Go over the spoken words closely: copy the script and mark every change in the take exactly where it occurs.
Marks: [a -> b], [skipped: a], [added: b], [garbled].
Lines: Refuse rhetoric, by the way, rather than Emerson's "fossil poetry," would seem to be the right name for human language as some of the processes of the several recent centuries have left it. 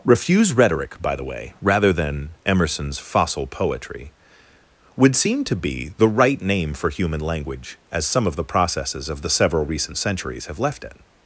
Refuse rhetoric, by the way, rather than Emerson's "fossil poetry," would seem to be the right name for human language as some of the processes of the several recent centuries have left it.